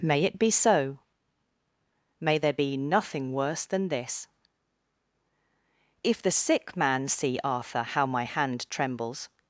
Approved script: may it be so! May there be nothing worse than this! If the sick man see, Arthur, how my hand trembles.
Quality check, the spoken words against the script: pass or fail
pass